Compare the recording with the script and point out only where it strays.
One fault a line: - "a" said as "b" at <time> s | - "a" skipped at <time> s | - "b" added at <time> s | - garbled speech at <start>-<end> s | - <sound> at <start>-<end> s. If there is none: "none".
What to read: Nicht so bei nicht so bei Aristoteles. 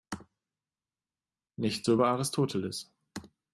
- "nicht so bei" skipped at 2.1 s